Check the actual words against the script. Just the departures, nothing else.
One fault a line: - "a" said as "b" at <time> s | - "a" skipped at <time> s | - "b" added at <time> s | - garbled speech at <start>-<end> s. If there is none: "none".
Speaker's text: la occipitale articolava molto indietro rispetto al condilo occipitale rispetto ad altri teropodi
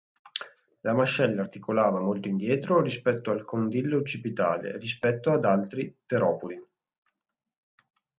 - "occipitale" said as "mascella" at 0.9 s